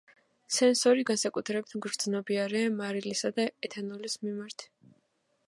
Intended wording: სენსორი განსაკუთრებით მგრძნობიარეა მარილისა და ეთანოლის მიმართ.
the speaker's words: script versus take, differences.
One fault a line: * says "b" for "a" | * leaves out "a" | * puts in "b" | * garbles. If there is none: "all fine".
all fine